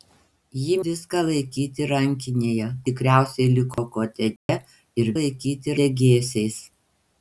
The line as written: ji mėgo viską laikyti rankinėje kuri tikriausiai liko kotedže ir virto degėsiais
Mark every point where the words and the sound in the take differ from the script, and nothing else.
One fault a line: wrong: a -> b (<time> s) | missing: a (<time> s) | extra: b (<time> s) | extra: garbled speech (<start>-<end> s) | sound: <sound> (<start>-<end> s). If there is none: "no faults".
missing: mėgo (0.8 s)
missing: kuri (2.7 s)
sound: dropout (3.7-3.8 s)
sound: dropout (4.4-4.5 s)
wrong: virto -> laikyti (5.2 s)